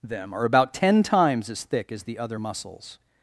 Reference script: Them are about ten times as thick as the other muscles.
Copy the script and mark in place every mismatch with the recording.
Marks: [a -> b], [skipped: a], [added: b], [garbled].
Them are about ten times as thick as the other muscles.